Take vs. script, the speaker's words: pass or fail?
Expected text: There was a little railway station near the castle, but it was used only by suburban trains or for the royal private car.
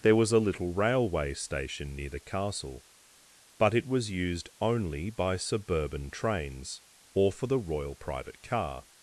pass